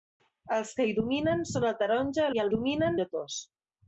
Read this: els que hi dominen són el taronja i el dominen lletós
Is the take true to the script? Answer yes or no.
yes